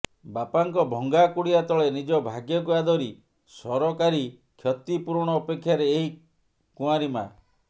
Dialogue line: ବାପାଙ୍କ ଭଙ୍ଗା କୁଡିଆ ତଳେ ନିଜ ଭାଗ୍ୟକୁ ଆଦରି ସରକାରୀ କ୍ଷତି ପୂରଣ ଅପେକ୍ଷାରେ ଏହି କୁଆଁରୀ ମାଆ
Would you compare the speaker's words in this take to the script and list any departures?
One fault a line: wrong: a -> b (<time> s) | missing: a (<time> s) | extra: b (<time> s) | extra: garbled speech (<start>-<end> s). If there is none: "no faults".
no faults